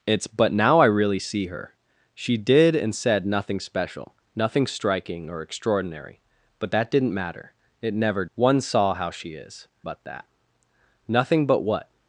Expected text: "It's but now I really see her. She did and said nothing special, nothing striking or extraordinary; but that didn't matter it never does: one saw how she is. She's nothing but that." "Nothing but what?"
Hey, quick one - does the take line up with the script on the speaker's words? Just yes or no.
no